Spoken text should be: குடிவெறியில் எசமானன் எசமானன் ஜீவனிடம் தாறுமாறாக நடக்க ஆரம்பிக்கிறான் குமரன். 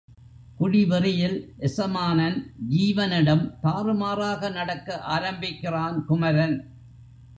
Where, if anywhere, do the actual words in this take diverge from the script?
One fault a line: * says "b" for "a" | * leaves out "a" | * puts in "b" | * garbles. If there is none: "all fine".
* leaves out "எசமானன்"